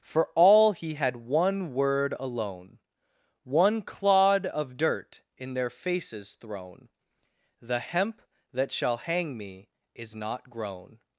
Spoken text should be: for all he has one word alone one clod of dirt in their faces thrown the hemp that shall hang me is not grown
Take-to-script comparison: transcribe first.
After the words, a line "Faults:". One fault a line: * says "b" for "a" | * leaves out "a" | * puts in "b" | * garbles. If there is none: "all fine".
for all he had one word alone one clod of dirt in their faces thrown the hemp that shall hang me is not grown
Faults:
* says "had" for "has"